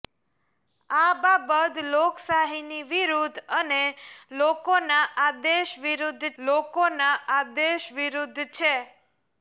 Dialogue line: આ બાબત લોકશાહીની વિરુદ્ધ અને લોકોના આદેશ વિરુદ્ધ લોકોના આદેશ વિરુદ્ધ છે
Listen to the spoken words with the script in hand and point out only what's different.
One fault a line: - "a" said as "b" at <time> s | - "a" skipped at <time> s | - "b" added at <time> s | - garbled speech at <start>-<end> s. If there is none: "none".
none